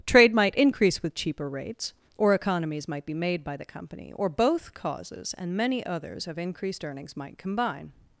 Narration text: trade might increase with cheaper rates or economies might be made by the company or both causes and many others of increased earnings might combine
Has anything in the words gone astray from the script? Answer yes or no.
no